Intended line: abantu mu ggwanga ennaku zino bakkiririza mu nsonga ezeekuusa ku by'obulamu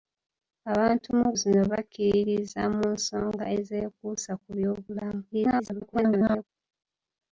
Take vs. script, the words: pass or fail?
fail